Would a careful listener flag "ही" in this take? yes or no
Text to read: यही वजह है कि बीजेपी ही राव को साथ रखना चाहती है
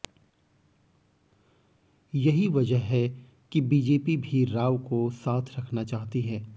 yes